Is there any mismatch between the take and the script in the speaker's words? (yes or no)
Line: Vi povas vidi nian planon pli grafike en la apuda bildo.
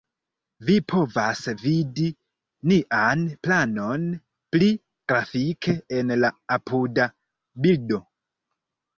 no